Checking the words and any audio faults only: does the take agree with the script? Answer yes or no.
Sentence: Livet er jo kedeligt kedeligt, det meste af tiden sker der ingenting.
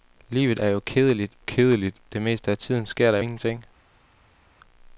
yes